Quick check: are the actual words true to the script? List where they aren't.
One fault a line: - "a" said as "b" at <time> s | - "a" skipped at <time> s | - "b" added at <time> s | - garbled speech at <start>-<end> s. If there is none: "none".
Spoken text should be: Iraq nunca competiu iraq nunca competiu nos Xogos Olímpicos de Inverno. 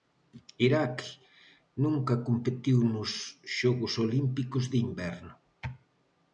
- "iraq nunca competiu" skipped at 2.8 s